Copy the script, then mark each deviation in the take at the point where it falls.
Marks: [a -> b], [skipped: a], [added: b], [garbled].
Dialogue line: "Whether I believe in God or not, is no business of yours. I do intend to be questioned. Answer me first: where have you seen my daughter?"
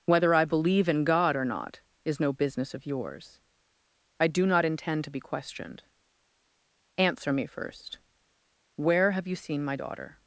"Whether I believe in God or not, is no business of yours. I do [added: not] intend to be questioned. Answer me first: where have you seen my daughter?"